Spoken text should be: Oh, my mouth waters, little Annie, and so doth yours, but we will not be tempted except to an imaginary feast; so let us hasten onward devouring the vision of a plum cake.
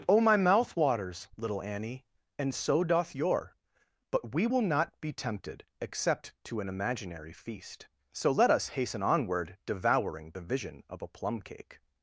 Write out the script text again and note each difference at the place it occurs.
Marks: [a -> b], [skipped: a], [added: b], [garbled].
Oh, my mouth waters, little Annie, and so doth [yours, -> your] but we will not be tempted except to an imaginary feast; so let us hasten onward devouring the vision of a plum cake.